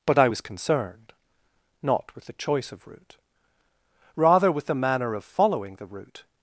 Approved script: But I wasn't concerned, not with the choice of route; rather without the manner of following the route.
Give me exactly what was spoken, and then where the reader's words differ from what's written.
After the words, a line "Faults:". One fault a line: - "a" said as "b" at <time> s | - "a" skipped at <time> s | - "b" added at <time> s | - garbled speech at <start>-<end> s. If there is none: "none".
But I was concerned, not with the choice of route; rather with the manner of following the route.
Faults:
- "wasn't" said as "was" at 0.3 s
- "without" said as "with" at 4.5 s